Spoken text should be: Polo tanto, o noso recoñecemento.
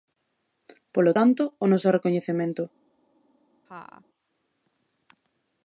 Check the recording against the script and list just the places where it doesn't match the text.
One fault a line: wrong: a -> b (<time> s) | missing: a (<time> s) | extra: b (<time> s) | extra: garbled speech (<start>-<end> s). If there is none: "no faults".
no faults